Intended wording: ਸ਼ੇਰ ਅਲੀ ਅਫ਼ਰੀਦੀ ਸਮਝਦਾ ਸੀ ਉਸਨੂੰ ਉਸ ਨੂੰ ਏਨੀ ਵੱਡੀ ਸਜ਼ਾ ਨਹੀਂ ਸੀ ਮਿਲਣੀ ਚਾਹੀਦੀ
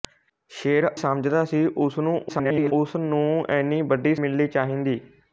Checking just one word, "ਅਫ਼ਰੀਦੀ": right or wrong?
wrong